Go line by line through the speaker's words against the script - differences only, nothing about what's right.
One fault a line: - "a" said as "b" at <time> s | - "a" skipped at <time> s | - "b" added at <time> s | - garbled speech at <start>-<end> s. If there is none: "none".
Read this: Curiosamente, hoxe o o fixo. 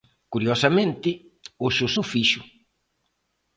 none